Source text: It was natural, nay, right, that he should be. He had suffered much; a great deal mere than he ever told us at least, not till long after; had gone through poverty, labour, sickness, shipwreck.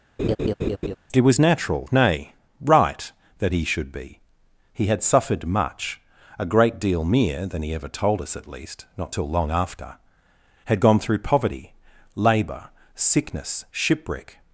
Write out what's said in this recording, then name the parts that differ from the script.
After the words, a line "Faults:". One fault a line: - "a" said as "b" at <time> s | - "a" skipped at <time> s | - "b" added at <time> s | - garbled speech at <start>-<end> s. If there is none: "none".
It was natural, nay, right, that he should be. He had suffered much; a great deal mere than he ever told us at least, not till long after; had gone through poverty, labour, sickness, shipwreck.
Faults:
none